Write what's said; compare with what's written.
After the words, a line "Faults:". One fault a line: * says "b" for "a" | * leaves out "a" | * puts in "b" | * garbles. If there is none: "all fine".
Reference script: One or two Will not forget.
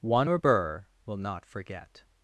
One or burr Will not forget.
Faults:
* says "burr" for "two"